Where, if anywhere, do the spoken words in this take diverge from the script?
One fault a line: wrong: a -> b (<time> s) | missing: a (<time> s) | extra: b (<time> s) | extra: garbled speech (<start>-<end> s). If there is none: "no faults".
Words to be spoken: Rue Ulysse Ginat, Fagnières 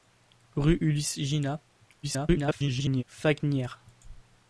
extra: garbled speech (2.0-3.0 s)